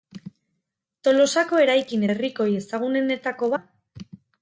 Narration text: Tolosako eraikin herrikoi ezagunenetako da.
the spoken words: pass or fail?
pass